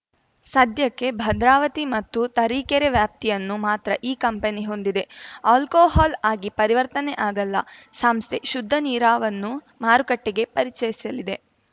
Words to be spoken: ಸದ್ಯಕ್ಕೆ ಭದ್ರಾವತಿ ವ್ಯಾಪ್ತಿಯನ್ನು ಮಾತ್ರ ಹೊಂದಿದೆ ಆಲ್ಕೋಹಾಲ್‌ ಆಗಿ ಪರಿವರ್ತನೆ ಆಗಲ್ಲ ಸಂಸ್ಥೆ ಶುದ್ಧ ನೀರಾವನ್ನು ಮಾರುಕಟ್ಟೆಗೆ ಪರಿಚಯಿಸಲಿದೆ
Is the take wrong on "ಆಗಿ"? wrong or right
right